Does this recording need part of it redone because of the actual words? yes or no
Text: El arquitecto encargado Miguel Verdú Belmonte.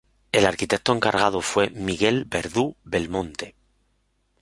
yes